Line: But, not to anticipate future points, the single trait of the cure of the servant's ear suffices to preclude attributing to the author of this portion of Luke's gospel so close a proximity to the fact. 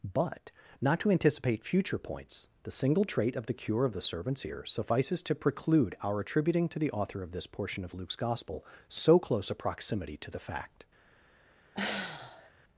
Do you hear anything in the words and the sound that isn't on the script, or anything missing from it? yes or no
yes